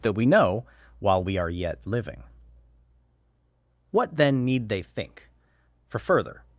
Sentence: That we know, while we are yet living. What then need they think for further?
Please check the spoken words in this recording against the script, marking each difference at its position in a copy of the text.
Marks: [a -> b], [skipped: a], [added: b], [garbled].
That we know, while we are yet living. What then need they think for further?